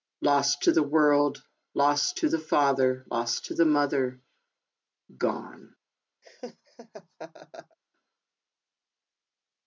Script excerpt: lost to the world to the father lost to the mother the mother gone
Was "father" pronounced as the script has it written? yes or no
yes